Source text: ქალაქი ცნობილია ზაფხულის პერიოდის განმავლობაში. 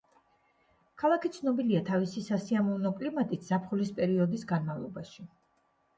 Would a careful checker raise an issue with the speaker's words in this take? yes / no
yes